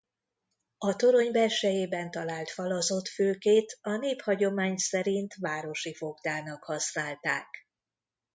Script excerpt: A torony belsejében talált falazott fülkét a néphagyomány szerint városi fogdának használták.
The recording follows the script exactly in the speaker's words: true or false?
true